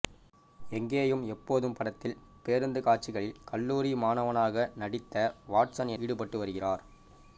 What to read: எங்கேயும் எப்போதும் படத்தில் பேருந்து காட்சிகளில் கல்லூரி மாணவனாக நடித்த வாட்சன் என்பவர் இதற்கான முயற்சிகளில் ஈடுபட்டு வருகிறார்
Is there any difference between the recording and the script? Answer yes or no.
yes